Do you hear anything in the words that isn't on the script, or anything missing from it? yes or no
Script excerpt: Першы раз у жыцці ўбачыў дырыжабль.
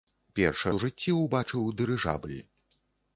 yes